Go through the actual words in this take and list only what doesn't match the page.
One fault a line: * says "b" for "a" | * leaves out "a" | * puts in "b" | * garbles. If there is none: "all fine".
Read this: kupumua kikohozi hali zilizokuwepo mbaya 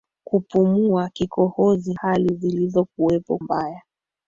all fine